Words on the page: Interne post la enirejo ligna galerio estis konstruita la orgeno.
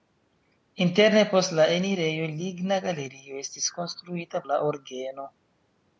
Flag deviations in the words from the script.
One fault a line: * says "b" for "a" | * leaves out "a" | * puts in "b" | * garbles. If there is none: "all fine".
all fine